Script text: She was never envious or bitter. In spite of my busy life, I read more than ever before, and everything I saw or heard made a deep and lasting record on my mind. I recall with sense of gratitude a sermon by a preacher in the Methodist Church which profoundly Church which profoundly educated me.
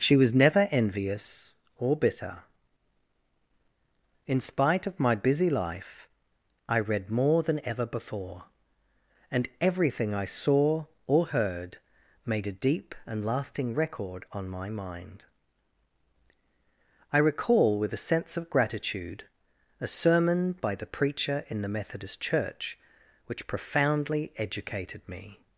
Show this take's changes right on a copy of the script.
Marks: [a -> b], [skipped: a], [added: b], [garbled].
She was never envious or bitter. In spite of my busy life, I read more than ever before, and everything I saw or heard made a deep and lasting record on my mind. I recall with [added: a] sense of gratitude a sermon by [a -> the] preacher in the Methodist Church which profoundly [skipped: Church which profoundly] educated me.